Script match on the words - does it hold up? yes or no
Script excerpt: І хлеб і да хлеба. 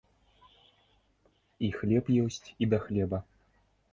no